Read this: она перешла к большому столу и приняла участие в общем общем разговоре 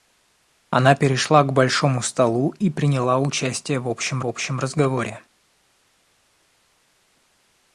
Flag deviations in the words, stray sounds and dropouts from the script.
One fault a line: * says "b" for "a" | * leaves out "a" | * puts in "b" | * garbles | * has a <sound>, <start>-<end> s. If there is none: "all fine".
all fine